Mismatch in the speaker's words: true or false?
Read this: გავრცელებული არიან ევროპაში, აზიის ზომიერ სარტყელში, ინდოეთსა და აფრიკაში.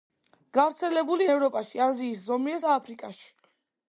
true